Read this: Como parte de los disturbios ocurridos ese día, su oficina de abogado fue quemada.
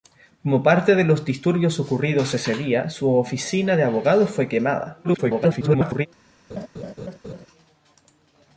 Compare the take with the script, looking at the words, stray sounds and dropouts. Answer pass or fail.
fail